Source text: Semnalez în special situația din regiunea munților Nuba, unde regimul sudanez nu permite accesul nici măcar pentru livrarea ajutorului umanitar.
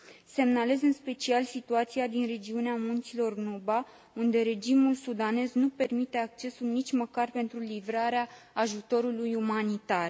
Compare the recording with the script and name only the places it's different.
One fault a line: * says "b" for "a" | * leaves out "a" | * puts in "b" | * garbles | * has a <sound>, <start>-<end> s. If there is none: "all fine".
all fine